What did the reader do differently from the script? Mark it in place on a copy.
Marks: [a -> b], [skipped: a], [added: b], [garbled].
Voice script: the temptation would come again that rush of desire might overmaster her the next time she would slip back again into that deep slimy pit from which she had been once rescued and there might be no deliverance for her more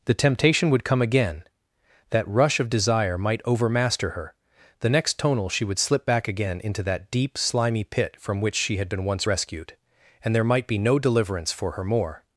the temptation would come again that rush of desire might overmaster her the next [time -> tonal] she would slip back again into that deep slimy pit from which she had been once rescued and there might be no deliverance for her more